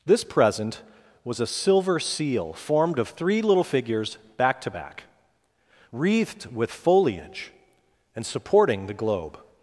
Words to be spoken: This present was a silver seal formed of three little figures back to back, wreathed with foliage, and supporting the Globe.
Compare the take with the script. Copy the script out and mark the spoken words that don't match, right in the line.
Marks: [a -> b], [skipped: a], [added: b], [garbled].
This present was a silver seal formed of three little figures back to back, wreathed with foliage, and supporting the Globe.